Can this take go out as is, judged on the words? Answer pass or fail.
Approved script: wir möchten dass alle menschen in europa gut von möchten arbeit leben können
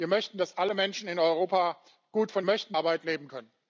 pass